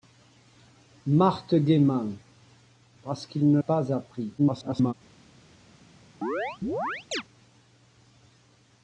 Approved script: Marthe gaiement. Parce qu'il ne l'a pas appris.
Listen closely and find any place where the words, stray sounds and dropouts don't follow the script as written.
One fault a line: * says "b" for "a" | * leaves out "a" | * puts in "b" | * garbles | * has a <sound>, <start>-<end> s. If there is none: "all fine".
* leaves out "l'a"
* garbles
* has a chirp, 6.2-7.2 s